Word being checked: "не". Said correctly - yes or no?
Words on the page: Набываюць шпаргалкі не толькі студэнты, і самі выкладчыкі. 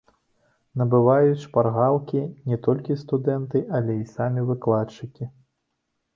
yes